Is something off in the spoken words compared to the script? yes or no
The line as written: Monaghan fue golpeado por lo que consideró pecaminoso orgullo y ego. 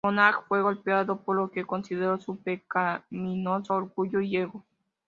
yes